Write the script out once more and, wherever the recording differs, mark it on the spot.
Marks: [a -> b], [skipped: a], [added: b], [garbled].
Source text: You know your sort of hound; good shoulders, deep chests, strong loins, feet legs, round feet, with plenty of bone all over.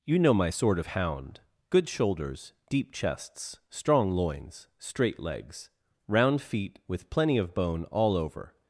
You know [your -> my] sort of hound; good shoulders, deep chests, strong loins, [feet -> straight] legs, round feet, with plenty of bone all over.